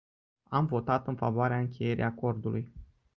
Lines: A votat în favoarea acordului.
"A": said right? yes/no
no